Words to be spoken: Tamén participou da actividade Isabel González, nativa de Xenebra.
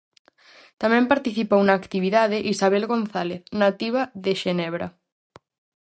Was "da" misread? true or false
true